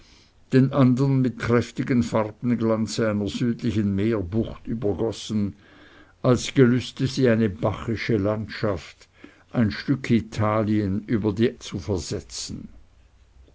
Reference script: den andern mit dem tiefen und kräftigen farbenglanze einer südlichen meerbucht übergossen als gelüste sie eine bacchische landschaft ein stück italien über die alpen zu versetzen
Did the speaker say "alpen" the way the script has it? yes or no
no